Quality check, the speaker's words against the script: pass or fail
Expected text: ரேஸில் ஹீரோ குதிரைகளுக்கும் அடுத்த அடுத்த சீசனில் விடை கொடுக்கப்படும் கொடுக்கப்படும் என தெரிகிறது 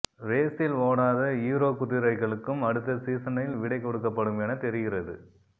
fail